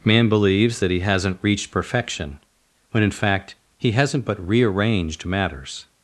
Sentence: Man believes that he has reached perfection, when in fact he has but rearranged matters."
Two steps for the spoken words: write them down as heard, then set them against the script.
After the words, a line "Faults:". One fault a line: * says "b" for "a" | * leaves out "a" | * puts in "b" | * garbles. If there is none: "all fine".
Man believes that he hasn't reached perfection, when in fact he hasn't but rearranged matters."
Faults:
* says "hasn't" for "has"
* says "hasn't" for "has"